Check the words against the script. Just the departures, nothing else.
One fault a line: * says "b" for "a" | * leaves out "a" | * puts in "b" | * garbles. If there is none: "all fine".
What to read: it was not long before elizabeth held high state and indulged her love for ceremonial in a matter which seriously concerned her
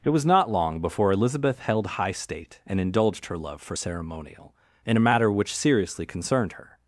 all fine